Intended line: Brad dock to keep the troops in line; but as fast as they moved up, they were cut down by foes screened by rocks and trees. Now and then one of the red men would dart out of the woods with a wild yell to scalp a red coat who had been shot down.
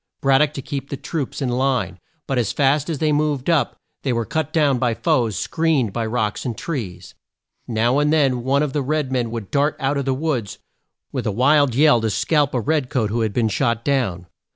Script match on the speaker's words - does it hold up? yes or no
yes